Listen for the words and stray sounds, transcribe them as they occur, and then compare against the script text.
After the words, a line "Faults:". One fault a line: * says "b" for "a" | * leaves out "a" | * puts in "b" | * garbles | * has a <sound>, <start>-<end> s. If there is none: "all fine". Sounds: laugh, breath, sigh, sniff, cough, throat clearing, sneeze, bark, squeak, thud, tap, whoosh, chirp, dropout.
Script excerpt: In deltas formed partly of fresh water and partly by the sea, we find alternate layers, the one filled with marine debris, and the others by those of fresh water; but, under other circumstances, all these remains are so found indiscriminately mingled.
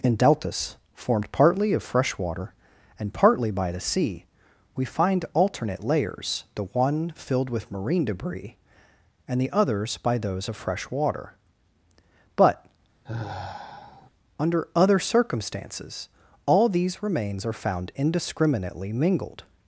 In deltas formed partly of fresh water and partly by the sea, we find alternate layers, the one filled with marine debris, and the others by those of fresh water; but, under other circumstances, all these remains are found indiscriminately mingled.
Faults:
* has a sigh, 13.1-14.1 s
* leaves out "so"